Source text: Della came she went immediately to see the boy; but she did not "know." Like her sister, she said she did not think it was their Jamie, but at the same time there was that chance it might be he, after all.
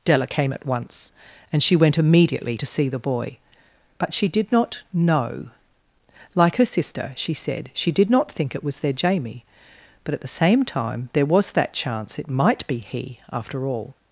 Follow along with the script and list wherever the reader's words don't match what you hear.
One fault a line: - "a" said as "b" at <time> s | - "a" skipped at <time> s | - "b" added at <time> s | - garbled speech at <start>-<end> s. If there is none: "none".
- "at once and" added at 0.5 s